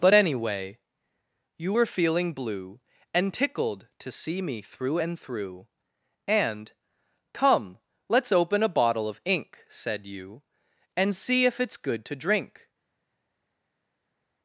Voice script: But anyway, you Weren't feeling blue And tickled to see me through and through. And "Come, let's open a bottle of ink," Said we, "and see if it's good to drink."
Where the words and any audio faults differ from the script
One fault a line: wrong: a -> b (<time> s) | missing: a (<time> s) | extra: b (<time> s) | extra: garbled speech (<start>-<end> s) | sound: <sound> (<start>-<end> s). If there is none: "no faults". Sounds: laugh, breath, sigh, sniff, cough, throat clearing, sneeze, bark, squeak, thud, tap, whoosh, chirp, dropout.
wrong: Weren't -> Were (1.7 s)
wrong: we -> you (10.0 s)